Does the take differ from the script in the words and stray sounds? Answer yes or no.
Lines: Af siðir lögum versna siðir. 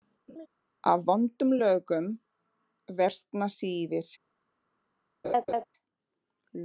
yes